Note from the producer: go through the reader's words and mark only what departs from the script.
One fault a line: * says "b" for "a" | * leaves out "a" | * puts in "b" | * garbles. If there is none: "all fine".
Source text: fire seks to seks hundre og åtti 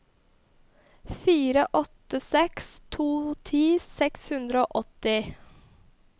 * puts in "åtte"
* puts in "ti"